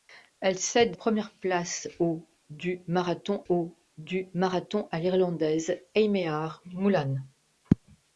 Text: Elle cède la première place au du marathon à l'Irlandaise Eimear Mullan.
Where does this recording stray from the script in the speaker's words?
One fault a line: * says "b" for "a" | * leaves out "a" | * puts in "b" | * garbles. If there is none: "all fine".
* leaves out "la"
* puts in "au du marathon"